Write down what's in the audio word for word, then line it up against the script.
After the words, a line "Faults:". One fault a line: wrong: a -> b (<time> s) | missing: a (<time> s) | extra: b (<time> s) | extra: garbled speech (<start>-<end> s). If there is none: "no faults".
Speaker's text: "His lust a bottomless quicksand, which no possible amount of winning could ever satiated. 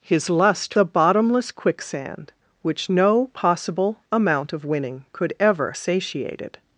"His lust a bottomless quicksand, which no possible amount of winning could ever satiated.
Faults:
no faults